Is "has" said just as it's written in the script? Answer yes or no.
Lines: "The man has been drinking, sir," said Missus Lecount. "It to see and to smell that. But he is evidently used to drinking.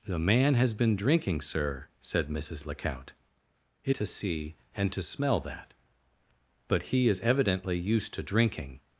yes